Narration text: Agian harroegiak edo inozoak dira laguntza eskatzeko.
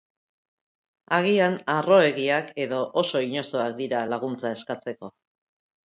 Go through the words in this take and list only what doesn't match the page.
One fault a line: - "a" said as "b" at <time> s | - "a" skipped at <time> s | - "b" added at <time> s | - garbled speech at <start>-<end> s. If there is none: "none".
- "oso" added at 3.0 s